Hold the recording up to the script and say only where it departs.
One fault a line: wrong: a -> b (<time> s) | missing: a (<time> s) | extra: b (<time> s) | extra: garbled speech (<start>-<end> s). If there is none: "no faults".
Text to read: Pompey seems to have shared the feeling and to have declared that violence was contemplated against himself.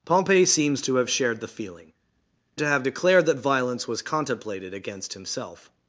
missing: and (1.9 s)